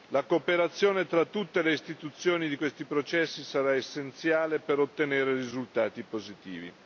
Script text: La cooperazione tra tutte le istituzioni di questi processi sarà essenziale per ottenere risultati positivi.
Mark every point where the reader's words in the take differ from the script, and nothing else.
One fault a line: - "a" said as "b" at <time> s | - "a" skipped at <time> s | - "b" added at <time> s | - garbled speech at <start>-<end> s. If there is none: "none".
none